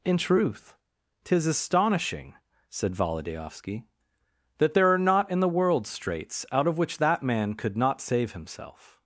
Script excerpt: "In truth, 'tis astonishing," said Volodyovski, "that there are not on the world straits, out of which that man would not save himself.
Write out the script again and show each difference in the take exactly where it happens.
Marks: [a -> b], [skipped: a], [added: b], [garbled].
"In truth, 'tis astonishing," said Volodyovski, "that there are not [on -> in] the world straits, out of which that man [would -> could] not save himself.